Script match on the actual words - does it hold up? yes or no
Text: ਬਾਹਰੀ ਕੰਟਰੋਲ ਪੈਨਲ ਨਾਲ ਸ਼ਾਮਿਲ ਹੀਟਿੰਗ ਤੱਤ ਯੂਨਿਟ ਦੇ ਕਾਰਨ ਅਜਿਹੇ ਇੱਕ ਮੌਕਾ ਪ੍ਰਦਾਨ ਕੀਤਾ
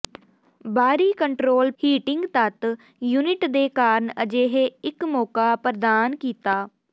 no